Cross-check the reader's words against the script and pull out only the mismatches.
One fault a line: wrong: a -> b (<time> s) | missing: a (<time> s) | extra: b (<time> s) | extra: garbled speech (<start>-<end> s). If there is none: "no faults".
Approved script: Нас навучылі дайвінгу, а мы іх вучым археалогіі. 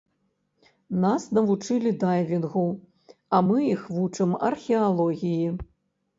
no faults